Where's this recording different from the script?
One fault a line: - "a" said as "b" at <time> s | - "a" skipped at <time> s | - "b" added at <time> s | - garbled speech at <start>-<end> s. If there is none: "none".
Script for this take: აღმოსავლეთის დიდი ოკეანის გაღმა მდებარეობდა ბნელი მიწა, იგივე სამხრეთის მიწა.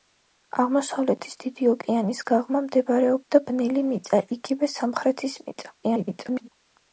- garbled speech at 5.8-6.5 s